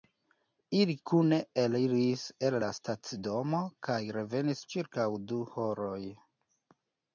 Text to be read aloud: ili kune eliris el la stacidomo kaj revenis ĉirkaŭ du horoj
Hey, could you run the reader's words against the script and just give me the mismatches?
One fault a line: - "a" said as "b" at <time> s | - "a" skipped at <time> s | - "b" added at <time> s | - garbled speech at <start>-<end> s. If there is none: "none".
none